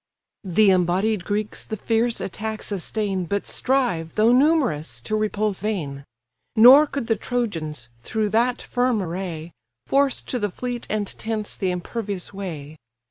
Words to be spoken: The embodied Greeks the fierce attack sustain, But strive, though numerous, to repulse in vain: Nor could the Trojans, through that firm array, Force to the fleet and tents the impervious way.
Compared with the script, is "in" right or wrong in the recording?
wrong